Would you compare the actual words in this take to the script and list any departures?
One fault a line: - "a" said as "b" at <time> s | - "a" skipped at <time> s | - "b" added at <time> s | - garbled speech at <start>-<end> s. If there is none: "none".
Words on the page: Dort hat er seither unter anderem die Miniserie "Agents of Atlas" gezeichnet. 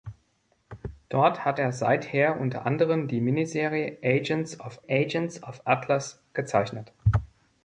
- "agents of" added at 4.9 s